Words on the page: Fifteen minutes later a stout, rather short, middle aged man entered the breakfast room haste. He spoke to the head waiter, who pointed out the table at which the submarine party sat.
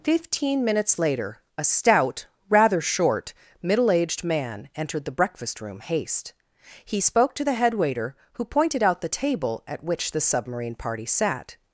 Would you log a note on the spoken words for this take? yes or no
no